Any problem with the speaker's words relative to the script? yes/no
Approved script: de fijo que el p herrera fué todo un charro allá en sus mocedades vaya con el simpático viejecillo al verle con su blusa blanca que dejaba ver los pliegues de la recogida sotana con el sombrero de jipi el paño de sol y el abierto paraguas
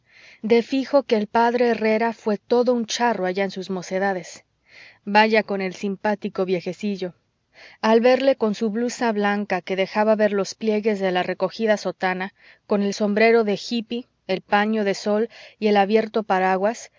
no